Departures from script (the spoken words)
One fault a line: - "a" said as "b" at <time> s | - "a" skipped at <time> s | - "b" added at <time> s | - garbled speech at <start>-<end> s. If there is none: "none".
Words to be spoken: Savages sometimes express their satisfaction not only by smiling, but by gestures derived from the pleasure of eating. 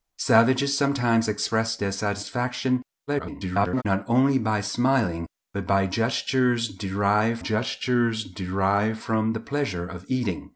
- garbled speech at 3.1-3.8 s
- "gestures derived" added at 7.4 s